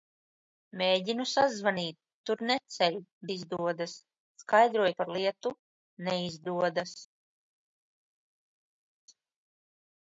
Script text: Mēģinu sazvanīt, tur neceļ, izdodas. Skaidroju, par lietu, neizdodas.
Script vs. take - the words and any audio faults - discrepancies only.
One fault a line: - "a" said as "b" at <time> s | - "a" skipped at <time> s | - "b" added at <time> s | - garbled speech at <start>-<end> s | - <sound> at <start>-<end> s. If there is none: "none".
none